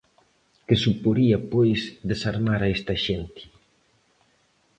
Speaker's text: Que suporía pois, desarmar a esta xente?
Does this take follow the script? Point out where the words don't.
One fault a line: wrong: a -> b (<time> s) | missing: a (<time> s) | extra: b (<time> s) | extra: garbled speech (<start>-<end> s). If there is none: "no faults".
no faults